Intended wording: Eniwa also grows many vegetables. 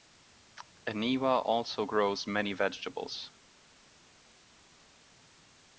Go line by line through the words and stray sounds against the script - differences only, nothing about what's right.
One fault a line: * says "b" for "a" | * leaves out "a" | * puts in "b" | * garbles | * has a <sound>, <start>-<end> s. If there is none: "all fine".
all fine